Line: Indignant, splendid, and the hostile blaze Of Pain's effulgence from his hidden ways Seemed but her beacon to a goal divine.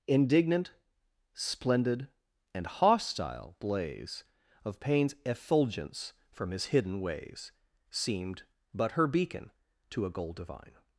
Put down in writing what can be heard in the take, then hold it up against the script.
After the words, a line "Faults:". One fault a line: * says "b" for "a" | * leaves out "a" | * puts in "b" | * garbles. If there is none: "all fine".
Indignant, splendid, and hostile blaze Of Pain's effulgence from his hidden ways Seemed but her beacon to a goal divine.
Faults:
* leaves out "the"